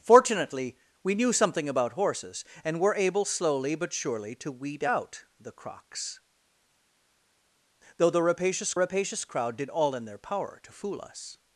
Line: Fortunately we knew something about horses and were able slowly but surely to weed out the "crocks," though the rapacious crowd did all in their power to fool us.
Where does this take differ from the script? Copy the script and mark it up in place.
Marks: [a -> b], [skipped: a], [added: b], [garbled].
Fortunately we knew something about horses and were able slowly but surely to weed out the "crocks," though the rapacious [added: rapacious] crowd did all in their power to fool us.